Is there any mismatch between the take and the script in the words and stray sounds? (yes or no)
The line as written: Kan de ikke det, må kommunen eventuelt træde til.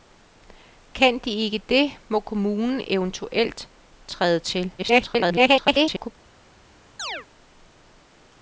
yes